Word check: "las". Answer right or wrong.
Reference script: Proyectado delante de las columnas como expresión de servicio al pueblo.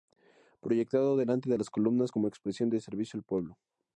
right